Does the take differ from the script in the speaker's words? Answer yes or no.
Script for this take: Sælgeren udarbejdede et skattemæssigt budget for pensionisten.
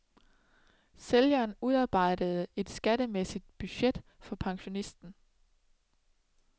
no